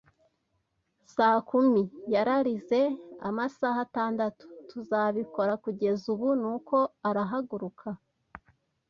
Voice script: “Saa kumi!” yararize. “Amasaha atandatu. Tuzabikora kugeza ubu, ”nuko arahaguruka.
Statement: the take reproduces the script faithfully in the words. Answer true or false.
true